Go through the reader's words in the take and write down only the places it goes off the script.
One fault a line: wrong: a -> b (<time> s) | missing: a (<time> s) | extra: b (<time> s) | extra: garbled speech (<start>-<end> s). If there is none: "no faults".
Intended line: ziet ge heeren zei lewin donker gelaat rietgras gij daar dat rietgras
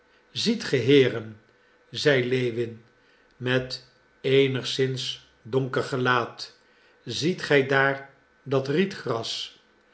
extra: met eenigszins (3.4 s)
wrong: rietgras -> ziet (7.0 s)